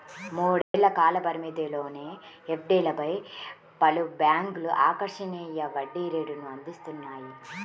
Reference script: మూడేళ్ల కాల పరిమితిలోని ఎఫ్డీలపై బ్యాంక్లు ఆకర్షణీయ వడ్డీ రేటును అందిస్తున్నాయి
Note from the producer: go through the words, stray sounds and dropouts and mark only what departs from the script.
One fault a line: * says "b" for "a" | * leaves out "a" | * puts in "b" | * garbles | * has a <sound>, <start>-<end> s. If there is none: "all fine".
* has a dropout, 0.6-0.7 s
* puts in "పలు"